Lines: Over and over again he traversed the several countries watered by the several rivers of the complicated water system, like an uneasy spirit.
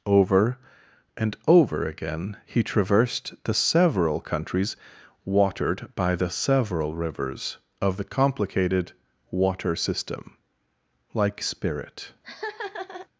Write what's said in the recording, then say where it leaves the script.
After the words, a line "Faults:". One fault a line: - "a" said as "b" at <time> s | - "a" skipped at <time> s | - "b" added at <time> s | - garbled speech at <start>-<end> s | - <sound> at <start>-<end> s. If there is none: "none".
Over and over again he traversed the several countries watered by the several rivers of the complicated water system, like spirit.
Faults:
- "an uneasy" skipped at 11.4 s
- laugh at 12.2-13.1 s